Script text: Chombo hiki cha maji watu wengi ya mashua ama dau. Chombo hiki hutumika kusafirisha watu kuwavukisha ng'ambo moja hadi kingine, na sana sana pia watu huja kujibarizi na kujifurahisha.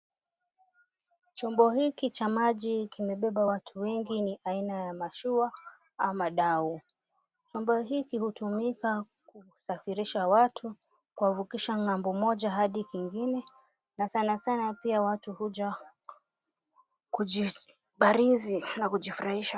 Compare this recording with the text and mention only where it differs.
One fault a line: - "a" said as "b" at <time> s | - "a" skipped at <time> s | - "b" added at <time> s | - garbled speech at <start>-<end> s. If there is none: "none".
- "kimebeba" added at 2.9 s
- "ni aina" added at 4.2 s